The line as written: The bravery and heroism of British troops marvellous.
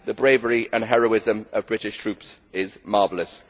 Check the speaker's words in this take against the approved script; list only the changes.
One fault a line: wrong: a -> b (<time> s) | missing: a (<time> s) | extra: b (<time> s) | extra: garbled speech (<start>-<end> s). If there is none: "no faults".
extra: is (2.5 s)